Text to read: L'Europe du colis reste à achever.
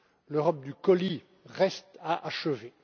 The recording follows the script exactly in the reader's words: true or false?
true